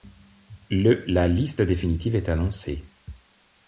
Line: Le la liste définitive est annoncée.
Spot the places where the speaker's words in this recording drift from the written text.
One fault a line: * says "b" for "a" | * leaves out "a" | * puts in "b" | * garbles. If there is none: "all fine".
all fine